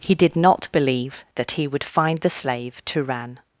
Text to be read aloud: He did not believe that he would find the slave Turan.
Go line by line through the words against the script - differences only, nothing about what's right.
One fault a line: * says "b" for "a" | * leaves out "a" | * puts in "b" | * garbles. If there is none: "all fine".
all fine